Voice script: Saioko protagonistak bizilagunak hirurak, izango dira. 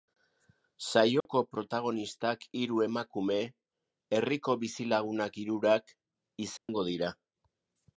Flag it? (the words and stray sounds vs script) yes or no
yes